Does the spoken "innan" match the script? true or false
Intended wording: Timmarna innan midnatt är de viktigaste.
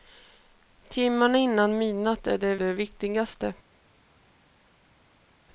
true